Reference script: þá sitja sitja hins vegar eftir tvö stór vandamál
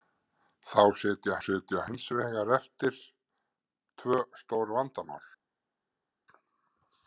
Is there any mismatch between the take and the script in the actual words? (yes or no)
no